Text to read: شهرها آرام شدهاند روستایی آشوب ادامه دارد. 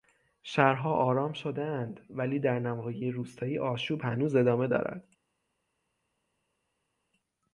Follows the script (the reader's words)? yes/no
no